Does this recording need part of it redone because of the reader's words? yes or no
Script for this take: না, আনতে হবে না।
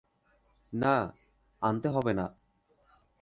no